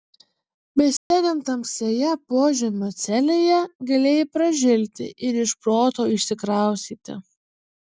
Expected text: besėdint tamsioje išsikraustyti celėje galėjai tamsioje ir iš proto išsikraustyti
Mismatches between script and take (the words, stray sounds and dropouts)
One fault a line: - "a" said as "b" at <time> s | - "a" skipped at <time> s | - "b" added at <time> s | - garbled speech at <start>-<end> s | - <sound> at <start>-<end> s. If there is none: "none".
- dropout at 1.0-1.1 s
- "išsikraustyti" said as "požemio" at 2.3 s
- "tamsioje" said as "pražilti" at 4.4 s